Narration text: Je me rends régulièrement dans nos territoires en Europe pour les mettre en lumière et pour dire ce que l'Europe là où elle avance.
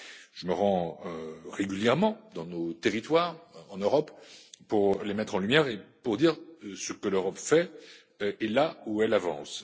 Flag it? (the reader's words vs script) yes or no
yes